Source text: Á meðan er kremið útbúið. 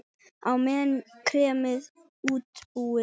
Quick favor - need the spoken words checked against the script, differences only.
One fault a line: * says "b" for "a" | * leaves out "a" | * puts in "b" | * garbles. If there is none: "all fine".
all fine